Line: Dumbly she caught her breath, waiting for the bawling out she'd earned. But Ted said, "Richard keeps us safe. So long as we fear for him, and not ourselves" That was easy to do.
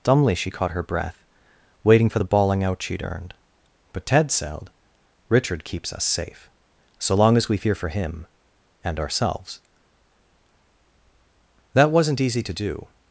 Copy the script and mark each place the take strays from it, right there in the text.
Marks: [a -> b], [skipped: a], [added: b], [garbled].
Dumbly she caught her breath, waiting for the bawling out she'd earned. But Ted said, "Richard keeps us safe. So long as we fear for him, and [skipped: not] ourselves" That [was -> wasn't] easy to do.